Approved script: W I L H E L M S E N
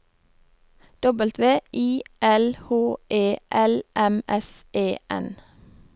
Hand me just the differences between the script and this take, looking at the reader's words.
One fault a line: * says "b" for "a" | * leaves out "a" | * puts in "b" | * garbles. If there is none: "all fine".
all fine